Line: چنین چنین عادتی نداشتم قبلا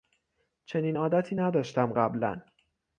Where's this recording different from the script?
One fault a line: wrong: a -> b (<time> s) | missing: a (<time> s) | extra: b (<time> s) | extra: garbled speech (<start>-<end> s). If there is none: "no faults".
missing: چنین (1.0 s)